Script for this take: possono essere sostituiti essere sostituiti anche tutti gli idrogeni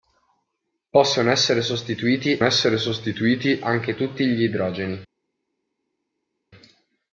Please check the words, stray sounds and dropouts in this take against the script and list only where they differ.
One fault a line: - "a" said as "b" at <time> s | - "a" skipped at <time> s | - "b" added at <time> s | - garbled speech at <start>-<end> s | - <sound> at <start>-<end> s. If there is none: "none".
none